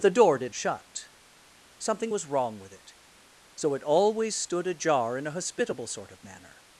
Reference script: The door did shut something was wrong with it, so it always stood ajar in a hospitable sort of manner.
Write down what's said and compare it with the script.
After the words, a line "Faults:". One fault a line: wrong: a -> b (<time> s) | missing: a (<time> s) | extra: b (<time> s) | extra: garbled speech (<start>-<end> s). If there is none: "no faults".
The door did shut something was wrong with it, so it always stood ajar in a hospitable sort of manner.
Faults:
no faults